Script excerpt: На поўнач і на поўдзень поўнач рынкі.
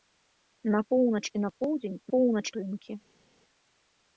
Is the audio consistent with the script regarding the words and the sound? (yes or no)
yes